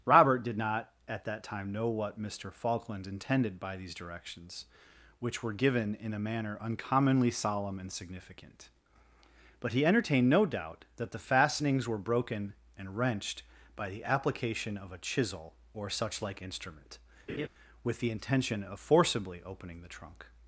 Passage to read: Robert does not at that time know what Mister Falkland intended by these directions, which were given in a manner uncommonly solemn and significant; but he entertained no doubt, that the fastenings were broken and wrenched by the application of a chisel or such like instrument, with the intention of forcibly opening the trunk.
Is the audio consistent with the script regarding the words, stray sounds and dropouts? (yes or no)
no